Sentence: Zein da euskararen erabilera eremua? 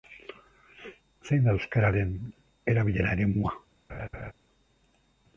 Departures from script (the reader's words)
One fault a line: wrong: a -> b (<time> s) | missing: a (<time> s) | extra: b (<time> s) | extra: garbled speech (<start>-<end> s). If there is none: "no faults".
no faults